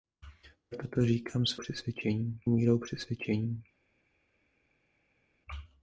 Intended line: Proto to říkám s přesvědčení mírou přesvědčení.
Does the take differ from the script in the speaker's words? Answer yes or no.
no